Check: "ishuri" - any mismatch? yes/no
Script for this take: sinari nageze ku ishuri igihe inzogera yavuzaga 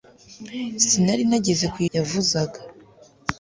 yes